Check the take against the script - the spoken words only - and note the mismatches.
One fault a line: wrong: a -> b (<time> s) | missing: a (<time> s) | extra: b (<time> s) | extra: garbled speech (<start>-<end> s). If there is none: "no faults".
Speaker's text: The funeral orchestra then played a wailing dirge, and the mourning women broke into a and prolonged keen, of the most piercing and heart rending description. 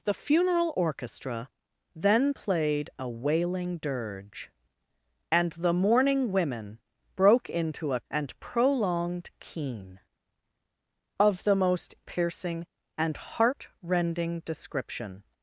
no faults